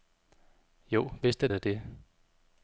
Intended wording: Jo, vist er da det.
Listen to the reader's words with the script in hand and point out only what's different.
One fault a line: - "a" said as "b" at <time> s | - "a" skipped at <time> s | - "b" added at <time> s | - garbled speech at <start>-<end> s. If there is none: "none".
none